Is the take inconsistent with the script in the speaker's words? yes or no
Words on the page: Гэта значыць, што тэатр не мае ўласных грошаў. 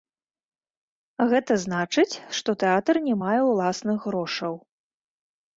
no